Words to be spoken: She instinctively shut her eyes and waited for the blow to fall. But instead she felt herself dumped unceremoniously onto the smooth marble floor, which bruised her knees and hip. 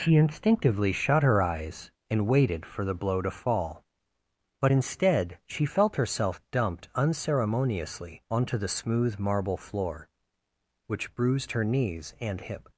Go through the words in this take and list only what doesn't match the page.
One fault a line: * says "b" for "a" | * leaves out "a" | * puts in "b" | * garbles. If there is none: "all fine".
all fine